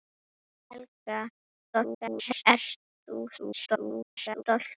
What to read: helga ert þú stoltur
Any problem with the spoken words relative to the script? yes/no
yes